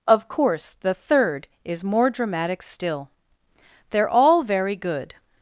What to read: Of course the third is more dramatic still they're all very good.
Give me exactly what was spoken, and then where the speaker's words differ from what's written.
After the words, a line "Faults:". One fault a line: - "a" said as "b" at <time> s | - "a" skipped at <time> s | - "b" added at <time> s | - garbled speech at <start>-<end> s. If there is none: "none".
Of course the third is more dramatic still they're all very good.
Faults:
none